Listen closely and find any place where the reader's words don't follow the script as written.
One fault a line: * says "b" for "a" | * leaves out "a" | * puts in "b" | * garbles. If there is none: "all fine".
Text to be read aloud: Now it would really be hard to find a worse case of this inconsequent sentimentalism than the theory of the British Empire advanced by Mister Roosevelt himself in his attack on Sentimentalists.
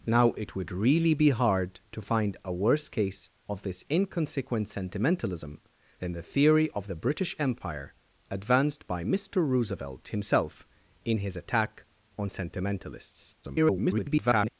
* garbles